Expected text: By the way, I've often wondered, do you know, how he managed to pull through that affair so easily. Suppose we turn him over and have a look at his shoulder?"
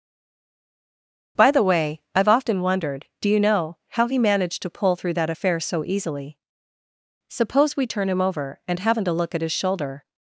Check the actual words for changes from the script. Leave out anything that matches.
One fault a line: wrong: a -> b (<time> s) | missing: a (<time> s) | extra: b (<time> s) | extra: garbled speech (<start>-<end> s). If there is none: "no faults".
wrong: have -> haven't (8.8 s)